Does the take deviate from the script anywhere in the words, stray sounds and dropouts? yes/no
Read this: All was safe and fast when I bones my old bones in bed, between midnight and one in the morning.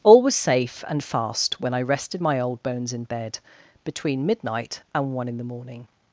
yes